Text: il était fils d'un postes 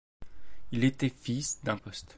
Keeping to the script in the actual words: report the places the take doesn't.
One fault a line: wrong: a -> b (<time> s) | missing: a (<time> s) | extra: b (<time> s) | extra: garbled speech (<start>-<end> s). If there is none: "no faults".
no faults